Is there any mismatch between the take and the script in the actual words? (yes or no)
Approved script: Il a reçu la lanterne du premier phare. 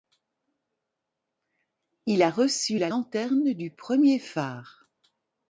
no